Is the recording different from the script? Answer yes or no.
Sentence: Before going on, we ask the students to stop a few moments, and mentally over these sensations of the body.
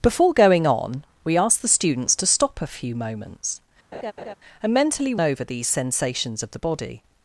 no